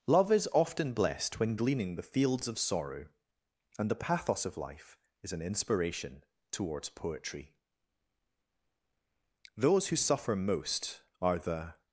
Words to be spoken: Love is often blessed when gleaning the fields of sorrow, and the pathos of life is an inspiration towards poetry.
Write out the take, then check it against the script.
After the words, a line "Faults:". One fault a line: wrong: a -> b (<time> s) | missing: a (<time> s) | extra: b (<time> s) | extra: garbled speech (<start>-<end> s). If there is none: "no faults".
Love is often blessed when gleaning the fields of sorrow, and the pathos of life is an inspiration towards poetry. Those who suffer most are the
Faults:
extra: Those who suffer most are the (9.6 s)